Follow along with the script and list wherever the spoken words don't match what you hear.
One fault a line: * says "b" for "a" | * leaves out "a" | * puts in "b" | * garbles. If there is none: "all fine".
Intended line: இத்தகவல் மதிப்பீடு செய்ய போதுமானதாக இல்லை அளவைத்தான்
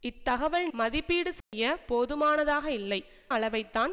all fine